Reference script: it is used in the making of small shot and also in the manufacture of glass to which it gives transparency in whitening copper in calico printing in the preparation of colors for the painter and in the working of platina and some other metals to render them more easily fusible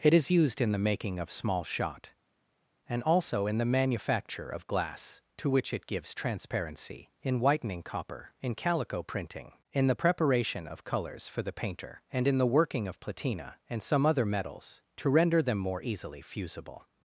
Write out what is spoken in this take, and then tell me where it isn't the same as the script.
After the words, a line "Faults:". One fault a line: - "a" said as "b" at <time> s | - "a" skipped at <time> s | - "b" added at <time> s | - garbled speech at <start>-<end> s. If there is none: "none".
it is used in the making of small shot and also in the manufacture of glass to which it gives transparency in whitening copper in calico printing in the preparation of colors for the painter and in the working of platina and some other metals to render them more easily fusible
Faults:
none